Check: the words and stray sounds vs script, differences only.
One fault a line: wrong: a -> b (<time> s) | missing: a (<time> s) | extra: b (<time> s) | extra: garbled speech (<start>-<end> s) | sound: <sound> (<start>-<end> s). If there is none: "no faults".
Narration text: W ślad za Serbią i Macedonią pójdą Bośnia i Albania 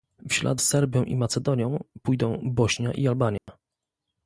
missing: za (0.6 s)
sound: dropout (3.4-3.5 s)